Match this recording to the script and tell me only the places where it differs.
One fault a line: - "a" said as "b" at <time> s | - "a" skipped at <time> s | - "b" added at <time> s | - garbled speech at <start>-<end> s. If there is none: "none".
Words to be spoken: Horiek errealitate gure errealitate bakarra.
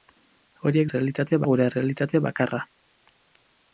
none